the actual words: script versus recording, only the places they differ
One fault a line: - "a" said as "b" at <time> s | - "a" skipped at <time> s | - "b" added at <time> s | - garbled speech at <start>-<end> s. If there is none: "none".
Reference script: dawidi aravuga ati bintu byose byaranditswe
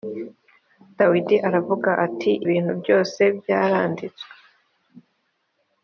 none